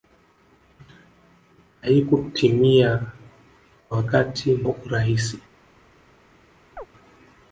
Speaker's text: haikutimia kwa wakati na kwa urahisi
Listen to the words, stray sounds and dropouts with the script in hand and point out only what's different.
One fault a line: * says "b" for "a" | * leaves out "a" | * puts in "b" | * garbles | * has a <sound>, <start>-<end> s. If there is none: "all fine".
* leaves out "na kwa"
* has a chirp, 6.8-6.9 s